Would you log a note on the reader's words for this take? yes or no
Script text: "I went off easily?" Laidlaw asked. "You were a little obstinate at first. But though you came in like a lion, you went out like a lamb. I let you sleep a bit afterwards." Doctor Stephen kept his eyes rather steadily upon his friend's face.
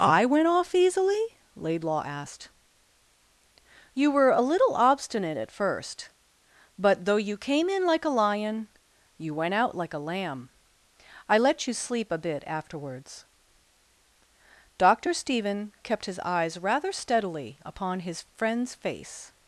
no